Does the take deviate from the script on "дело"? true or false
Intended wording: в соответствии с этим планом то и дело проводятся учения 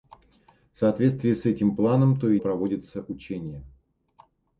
true